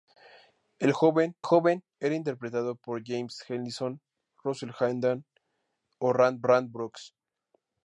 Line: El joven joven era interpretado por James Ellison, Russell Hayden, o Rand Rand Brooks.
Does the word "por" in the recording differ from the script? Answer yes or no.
no